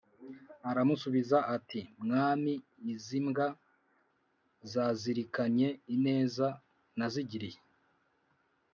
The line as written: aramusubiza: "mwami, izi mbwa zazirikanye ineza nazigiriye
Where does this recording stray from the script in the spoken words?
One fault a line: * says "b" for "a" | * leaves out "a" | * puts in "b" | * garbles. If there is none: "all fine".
* puts in "ati"